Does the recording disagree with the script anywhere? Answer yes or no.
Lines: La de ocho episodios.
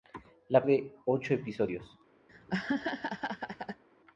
no